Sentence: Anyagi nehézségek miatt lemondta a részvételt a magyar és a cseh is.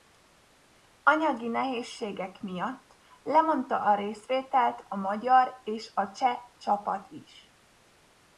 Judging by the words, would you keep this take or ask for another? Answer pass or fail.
fail